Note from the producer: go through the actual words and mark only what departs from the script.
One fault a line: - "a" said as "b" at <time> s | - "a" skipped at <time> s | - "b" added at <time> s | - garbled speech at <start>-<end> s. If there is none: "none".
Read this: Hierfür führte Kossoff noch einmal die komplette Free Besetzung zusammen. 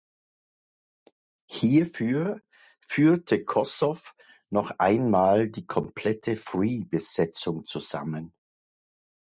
none